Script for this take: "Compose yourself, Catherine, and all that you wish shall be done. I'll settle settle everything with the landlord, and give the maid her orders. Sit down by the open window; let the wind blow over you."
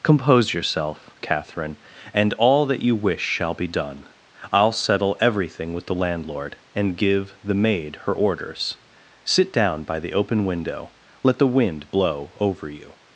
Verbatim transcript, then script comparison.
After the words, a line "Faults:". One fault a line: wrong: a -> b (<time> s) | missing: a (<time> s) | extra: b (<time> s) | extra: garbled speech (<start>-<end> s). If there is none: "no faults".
"Compose yourself, Catherine, and all that you wish shall be done. I'll settle everything with the landlord, and give the maid her orders. Sit down by the open window; let the wind blow over you."
Faults:
missing: settle (5.2 s)